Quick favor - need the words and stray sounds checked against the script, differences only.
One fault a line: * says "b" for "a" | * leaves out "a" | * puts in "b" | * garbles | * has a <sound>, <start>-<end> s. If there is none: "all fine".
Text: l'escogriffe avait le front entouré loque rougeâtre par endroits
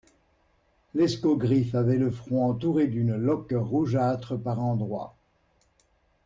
* puts in "d'une"